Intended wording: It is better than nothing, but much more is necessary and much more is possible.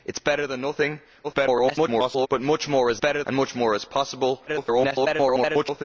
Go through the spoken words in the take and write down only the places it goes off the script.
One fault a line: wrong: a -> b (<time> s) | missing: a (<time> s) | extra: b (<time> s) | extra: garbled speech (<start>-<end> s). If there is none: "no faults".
extra: garbled speech (1.2-2.3 s)
wrong: necessary -> better (3.0 s)
extra: garbled speech (4.5-5.8 s)